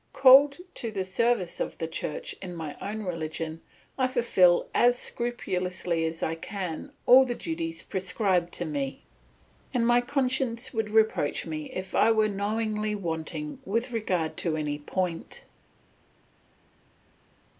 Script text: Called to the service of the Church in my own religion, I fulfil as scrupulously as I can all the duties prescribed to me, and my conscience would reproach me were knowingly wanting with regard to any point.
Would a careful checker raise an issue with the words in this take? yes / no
yes